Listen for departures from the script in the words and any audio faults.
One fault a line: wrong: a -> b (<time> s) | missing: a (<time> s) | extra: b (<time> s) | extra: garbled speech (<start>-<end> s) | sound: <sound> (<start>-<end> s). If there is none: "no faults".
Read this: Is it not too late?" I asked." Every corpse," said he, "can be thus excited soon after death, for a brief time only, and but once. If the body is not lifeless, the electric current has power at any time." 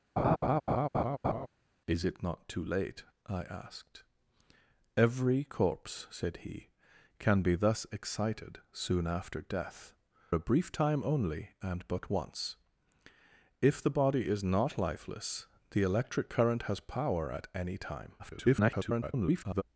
sound: laugh (0.2-1.5 s)
missing: for (9.9 s)
extra: garbled speech (18.2-19.6 s)